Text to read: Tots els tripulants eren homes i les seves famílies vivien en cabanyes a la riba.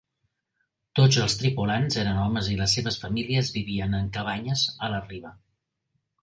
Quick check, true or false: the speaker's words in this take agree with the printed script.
true